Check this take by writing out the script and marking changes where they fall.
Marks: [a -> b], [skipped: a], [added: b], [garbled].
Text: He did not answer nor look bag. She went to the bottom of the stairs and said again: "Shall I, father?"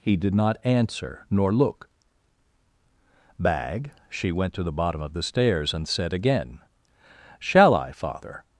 He did not answer nor look bag. She went to the bottom of the stairs and said again: "Shall I, father?"